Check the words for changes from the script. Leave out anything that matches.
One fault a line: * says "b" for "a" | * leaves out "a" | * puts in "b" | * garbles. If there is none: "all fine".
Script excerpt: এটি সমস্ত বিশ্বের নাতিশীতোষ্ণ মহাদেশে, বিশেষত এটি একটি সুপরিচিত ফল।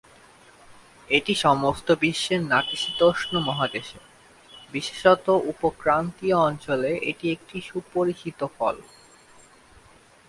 * puts in "উপ ক্রান্তীয় অঞ্চলে"